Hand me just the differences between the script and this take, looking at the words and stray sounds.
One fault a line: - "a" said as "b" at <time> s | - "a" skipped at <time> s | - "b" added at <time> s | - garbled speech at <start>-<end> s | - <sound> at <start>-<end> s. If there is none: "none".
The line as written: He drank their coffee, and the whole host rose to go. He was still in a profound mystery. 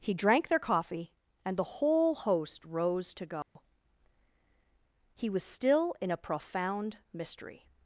- dropout at 3.4-3.6 s